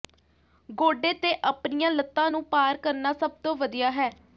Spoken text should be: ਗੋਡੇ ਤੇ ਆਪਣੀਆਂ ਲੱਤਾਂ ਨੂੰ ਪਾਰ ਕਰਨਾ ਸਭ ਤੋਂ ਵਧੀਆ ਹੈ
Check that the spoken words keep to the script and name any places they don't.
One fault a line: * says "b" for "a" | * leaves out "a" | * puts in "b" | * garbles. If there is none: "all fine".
all fine